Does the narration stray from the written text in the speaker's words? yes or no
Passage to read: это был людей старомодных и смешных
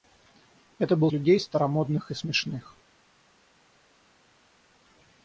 no